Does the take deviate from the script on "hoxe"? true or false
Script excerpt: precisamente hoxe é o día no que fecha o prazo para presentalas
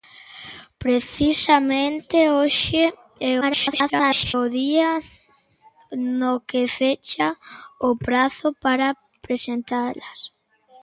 false